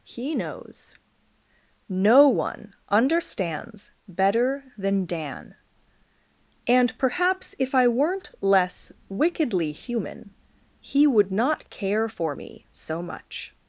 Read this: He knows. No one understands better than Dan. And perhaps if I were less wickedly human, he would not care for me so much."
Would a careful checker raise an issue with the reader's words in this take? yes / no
yes